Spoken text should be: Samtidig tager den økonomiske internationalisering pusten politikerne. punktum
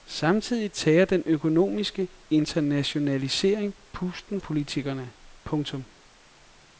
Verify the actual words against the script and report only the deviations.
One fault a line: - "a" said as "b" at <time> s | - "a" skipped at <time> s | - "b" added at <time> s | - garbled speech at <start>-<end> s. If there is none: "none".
none